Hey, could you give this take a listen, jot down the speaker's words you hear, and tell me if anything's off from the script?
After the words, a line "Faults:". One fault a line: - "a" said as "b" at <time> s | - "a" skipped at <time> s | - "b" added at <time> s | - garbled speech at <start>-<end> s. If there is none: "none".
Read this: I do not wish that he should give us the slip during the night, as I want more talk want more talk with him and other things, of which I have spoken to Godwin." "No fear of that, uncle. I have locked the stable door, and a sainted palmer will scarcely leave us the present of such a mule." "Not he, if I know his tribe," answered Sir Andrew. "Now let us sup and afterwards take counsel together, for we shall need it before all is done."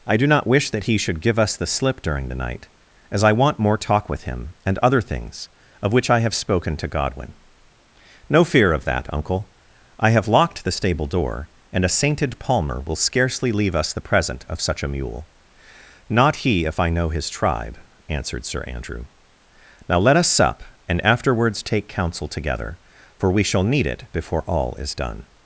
I do not wish that he should give us the slip during the night, as I want more talk with him and other things, of which I have spoken to Godwin." "No fear of that, uncle. I have locked the stable door, and a sainted palmer will scarcely leave us the present of such a mule." "Not he, if I know his tribe," answered Sir Andrew. "Now let us sup and afterwards take counsel together, for we shall need it before all is done."
Faults:
- "want more talk" skipped at 4.1 s